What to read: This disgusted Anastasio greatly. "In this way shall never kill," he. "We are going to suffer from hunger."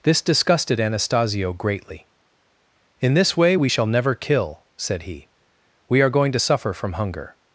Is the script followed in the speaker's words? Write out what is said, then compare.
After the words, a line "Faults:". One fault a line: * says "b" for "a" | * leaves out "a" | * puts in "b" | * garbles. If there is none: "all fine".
This disgusted Anastasio greatly. "In this way we shall never kill," said he. "We are going to suffer from hunger."
Faults:
* puts in "we"
* puts in "said"